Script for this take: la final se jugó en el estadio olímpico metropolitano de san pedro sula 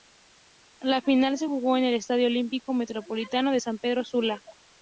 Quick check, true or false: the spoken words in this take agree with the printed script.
true